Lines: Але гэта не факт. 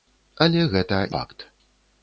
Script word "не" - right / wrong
wrong